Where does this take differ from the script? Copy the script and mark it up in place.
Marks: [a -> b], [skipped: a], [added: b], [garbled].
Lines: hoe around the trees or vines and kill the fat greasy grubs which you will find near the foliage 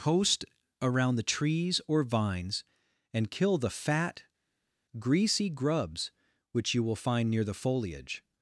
[hoe -> post] around the trees or vines and kill the fat greasy grubs which you will find near the foliage